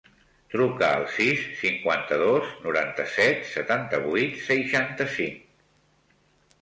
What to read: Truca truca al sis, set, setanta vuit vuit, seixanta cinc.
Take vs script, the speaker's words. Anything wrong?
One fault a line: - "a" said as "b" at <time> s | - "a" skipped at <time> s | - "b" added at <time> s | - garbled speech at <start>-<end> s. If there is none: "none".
- "truca" skipped at 0.9 s
- "cinquanta dos noranta" added at 1.6 s
- "vuit" skipped at 4.4 s